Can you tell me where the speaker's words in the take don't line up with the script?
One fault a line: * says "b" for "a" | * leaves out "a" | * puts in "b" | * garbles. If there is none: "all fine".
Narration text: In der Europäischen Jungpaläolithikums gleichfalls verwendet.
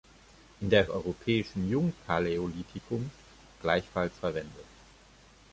all fine